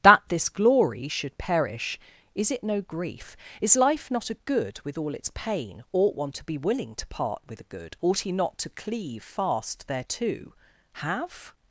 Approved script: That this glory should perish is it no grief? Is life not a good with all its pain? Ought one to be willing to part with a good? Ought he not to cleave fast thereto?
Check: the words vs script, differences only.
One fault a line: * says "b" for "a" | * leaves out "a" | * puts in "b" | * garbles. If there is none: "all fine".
* puts in "Have"